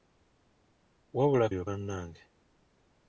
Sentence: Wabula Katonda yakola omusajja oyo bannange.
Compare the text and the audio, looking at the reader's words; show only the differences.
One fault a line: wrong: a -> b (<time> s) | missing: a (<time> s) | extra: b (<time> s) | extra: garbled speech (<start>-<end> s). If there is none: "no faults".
missing: Katonda yakola omusajja (1.5 s)